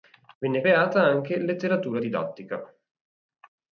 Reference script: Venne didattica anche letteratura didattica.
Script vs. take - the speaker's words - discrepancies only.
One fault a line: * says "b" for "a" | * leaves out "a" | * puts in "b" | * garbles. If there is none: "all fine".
* says "creata" for "didattica"